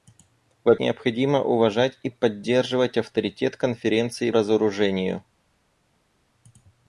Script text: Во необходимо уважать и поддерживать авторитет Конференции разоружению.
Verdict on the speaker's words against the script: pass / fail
pass